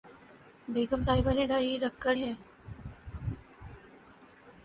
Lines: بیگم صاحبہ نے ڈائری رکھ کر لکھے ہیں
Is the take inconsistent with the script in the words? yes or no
yes